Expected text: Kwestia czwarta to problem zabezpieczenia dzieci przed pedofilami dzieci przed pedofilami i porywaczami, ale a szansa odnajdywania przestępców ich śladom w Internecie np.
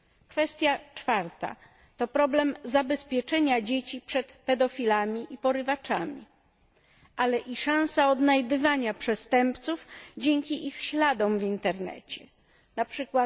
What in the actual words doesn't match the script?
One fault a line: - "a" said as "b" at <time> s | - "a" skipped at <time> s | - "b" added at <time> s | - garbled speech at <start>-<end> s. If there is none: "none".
- "dzieci przed pedofilami" skipped at 5.3 s
- "a" said as "i" at 7.4 s
- "dzięki" added at 10.2 s